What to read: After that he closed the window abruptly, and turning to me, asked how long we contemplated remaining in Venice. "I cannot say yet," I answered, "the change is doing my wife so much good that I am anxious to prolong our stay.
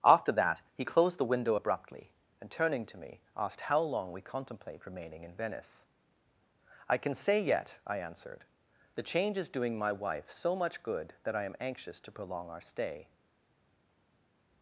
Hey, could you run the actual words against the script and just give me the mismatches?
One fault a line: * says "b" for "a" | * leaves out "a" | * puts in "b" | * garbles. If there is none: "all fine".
* says "contemplate" for "contemplated"
* says "can" for "cannot"